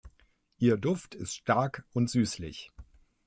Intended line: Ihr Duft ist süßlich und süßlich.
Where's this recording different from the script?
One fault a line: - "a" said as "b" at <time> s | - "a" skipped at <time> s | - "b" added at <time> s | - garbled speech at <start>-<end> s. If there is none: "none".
- "süßlich" said as "stark" at 1.4 s